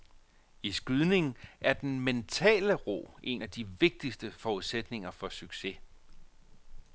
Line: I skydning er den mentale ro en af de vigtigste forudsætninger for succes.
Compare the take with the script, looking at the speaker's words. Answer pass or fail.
pass